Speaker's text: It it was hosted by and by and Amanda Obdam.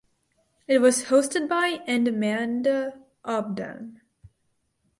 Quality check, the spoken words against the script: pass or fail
fail